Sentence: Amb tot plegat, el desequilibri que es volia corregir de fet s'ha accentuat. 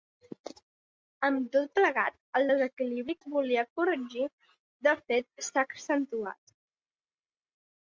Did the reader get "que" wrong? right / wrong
wrong